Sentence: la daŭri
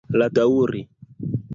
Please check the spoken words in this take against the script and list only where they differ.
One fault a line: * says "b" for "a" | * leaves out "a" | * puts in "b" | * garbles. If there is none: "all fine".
all fine